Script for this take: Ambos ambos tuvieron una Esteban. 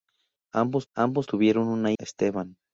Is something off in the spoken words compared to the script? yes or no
no